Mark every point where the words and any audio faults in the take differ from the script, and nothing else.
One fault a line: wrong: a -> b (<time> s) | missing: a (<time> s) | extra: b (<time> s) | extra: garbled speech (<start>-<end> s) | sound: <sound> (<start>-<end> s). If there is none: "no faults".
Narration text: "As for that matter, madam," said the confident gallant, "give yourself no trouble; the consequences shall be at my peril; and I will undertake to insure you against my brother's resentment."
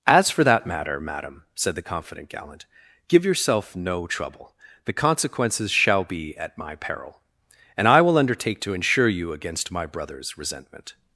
no faults